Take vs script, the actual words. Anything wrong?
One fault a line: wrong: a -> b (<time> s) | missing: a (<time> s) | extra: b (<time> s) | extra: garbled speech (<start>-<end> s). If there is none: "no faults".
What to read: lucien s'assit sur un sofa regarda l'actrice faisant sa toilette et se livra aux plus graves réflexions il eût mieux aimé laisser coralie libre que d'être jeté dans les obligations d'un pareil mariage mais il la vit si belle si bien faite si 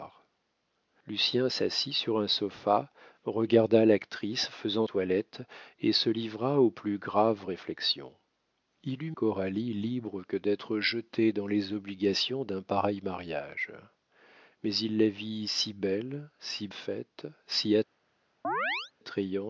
missing: sa (4.9 s)
missing: mieux aimé laisser (9.1 s)
missing: bien (16.7 s)